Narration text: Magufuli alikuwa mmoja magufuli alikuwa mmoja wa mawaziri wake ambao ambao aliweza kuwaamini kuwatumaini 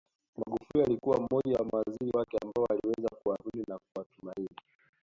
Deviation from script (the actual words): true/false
true